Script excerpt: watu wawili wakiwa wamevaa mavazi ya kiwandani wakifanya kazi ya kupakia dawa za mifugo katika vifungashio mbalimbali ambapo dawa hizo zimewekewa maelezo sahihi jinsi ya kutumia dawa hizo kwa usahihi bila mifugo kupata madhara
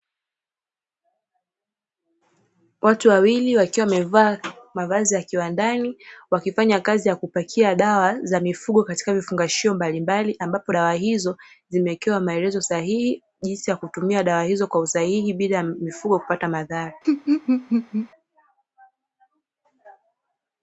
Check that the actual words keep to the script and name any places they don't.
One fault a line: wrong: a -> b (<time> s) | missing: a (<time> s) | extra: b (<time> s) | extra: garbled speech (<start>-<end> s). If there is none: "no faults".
no faults